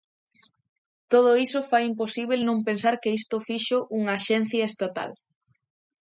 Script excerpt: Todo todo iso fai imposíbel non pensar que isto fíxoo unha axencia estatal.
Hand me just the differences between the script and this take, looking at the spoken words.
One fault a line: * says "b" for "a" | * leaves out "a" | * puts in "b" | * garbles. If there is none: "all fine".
* leaves out "todo"